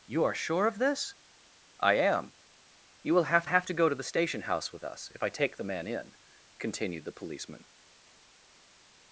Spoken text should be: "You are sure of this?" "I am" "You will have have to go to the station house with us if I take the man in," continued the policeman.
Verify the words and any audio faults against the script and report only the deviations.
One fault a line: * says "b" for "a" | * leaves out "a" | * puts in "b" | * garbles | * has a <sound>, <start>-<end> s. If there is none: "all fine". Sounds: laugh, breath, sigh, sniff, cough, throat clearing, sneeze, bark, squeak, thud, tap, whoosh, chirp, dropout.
all fine